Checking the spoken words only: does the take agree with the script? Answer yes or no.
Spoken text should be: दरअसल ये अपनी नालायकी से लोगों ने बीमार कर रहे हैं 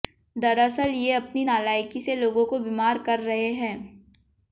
no